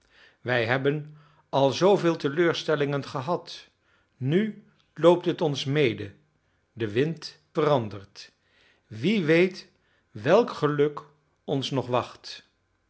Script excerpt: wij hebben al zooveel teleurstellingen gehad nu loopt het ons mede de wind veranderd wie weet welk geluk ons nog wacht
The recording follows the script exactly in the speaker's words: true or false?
true